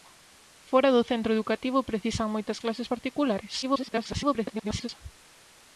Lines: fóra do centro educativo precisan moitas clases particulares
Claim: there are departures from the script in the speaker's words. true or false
true